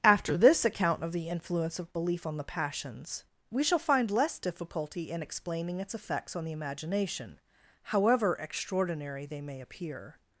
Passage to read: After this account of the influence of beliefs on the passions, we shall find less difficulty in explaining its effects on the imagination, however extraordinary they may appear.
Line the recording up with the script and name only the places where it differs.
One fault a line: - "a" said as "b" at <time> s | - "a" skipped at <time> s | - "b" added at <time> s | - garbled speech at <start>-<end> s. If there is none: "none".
- "beliefs" said as "belief" at 1.9 s